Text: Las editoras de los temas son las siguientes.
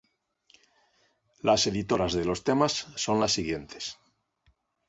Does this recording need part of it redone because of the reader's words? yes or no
no